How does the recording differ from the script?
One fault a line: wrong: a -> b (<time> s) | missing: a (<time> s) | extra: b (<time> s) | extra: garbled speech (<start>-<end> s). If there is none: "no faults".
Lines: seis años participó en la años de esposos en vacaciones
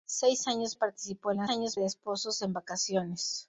no faults